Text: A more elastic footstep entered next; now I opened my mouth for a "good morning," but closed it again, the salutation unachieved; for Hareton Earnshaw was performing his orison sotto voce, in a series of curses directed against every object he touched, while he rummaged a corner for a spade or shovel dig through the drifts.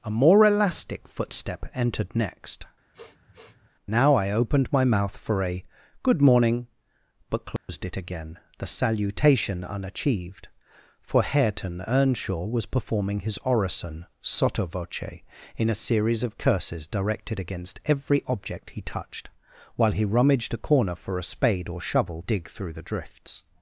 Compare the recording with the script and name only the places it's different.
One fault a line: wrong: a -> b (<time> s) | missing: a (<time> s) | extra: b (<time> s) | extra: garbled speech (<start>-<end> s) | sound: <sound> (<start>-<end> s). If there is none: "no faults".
sound: sniff (2.9-3.7 s)
sound: dropout (7.6-7.7 s)